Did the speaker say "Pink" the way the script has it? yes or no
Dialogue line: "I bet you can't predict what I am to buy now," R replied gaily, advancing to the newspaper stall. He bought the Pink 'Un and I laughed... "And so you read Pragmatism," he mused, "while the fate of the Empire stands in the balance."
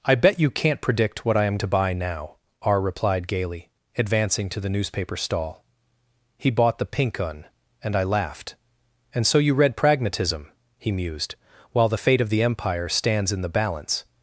yes